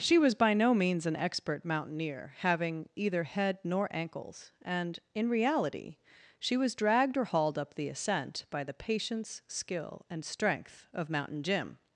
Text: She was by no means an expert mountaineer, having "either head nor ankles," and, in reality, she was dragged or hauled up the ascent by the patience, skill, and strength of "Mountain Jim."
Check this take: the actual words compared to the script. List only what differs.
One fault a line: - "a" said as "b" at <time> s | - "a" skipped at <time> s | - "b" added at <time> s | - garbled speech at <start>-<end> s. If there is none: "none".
none